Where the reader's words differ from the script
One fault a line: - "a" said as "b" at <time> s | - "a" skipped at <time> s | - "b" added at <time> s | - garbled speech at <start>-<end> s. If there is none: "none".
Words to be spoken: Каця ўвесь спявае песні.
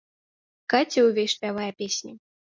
none